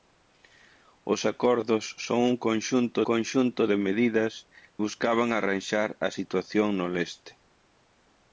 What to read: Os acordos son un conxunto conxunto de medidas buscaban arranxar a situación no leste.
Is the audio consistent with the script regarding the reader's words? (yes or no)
yes